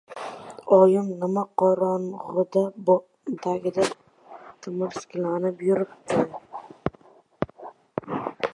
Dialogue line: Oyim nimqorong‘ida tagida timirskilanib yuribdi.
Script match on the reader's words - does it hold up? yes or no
yes